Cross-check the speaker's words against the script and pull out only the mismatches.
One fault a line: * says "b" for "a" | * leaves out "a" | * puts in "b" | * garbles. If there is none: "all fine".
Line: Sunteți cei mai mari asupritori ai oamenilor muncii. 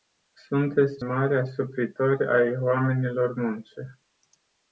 * leaves out "cei mai"